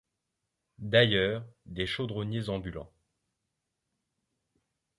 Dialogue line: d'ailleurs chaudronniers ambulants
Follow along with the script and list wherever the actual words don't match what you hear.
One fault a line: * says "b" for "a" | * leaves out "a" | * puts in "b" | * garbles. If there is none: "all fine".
* puts in "des"